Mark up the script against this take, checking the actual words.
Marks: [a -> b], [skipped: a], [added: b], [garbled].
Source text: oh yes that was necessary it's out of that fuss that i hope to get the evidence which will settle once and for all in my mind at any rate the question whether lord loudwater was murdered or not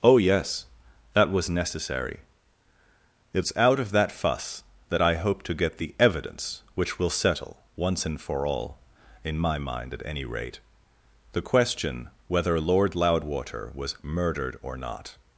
oh yes that was necessary it's out of that fuss that i hope to get the evidence which will settle once and for all in my mind at any rate the question whether lord loudwater was murdered or not